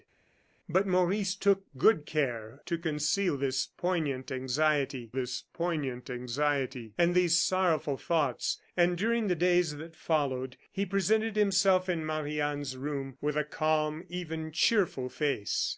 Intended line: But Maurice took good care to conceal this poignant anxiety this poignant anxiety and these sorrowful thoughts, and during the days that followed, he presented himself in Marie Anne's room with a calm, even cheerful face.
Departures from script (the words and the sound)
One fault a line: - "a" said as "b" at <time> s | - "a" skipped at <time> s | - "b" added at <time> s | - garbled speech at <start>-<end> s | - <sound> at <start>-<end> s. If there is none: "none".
none